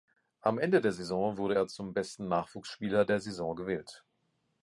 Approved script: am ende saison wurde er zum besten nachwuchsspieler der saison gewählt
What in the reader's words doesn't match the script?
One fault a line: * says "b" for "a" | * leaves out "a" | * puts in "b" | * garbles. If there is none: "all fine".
* puts in "der"